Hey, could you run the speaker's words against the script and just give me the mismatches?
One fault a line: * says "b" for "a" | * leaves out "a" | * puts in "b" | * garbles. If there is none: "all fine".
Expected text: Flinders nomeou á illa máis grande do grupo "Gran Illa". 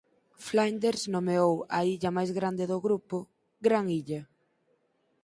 all fine